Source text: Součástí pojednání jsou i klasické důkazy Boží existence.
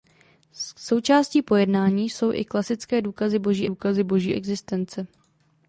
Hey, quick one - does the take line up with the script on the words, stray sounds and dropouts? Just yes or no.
no